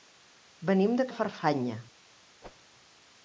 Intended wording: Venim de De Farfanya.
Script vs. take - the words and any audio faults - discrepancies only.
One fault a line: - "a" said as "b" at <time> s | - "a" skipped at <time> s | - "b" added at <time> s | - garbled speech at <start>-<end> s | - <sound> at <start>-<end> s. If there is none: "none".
- whoosh at 2.4-2.6 s